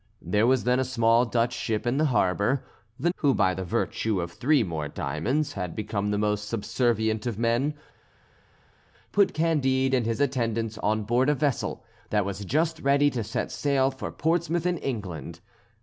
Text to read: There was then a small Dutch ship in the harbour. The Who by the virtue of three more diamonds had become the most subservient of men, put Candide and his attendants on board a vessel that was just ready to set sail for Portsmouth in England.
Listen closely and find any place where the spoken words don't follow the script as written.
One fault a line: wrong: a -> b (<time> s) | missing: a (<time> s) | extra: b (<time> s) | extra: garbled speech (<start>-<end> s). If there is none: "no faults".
no faults